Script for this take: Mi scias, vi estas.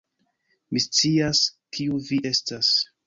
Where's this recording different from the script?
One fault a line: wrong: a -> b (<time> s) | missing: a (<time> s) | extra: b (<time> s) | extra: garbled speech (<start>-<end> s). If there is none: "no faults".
extra: kiu (1.8 s)